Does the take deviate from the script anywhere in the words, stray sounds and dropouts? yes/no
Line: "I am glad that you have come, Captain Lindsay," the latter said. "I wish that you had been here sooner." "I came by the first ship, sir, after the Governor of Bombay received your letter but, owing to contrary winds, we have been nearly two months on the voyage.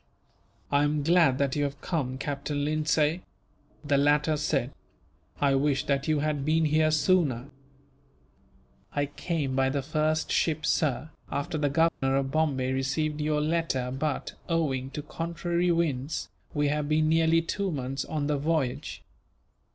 yes